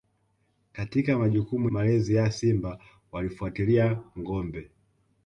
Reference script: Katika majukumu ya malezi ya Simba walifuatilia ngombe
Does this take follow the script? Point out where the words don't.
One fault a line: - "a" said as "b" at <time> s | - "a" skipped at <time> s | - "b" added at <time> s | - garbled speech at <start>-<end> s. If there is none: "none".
- "ya" skipped at 1.7 s